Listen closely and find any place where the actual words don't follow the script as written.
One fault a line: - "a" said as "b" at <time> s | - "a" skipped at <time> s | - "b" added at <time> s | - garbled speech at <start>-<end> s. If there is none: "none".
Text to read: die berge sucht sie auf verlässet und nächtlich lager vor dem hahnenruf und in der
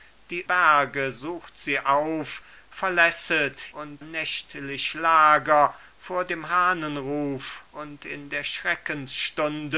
none